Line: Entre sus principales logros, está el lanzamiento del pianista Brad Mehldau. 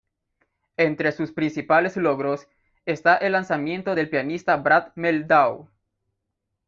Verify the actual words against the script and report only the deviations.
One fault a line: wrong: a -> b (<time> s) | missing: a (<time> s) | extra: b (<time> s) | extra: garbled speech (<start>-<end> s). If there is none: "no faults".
no faults